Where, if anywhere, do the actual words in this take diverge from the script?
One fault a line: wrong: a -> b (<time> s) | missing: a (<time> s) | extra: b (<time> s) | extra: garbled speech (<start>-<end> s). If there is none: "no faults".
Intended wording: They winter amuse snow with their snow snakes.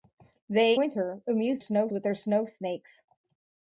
no faults